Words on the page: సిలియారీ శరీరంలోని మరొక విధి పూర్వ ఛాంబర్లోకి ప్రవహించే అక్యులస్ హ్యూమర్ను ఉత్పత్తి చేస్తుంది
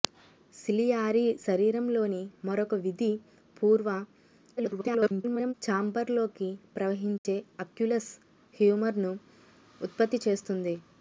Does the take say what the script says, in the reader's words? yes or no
no